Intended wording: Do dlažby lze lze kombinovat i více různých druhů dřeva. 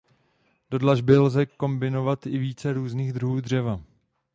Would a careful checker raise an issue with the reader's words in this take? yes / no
yes